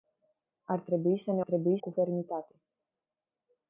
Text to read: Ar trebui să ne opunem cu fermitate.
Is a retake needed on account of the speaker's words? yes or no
yes